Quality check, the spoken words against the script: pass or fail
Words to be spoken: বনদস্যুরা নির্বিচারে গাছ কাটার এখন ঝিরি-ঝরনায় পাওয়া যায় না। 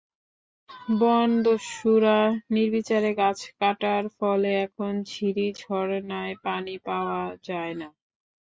fail